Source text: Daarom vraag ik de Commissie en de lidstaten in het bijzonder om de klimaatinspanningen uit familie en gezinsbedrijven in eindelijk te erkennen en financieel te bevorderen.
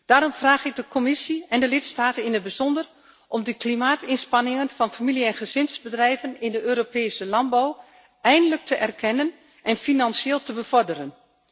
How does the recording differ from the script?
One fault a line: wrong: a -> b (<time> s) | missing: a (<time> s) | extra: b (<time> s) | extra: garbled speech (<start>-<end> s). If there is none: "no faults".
wrong: uit -> van (4.7 s)
extra: de Europese landbouw (6.5 s)